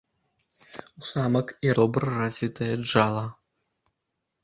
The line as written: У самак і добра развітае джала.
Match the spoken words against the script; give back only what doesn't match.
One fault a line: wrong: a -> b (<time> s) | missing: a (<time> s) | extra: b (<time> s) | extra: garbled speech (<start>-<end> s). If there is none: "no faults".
no faults